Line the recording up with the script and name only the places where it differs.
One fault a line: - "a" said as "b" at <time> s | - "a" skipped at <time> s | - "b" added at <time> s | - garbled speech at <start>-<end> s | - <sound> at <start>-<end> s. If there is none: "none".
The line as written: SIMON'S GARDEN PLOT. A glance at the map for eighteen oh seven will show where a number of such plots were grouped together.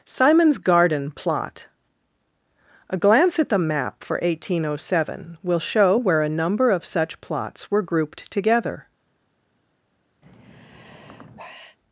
- sigh at 10.2-11.8 s